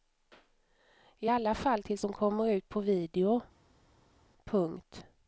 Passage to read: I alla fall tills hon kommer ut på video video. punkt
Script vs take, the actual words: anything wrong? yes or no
yes